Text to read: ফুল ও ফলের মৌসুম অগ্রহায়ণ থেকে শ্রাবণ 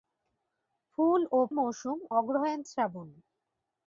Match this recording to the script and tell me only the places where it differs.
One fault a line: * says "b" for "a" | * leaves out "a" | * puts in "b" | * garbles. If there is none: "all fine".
* leaves out "ফলের"
* leaves out "থেকে"